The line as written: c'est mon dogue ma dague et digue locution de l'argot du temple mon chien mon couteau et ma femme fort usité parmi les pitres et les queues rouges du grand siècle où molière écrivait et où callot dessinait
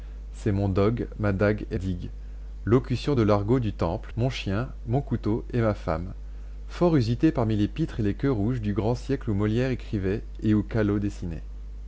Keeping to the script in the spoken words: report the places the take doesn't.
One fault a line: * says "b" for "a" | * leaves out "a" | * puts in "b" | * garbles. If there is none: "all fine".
all fine